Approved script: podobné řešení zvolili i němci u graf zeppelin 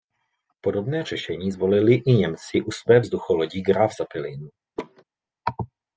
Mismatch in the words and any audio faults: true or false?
true